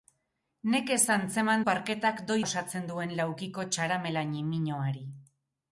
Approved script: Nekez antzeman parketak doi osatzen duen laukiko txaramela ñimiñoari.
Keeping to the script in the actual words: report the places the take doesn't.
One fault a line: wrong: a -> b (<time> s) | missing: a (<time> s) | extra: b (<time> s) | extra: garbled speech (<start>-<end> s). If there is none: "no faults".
no faults